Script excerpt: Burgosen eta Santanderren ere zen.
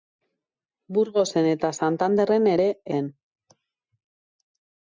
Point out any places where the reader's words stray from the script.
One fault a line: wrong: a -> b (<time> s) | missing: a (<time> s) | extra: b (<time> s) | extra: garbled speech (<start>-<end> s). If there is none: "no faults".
no faults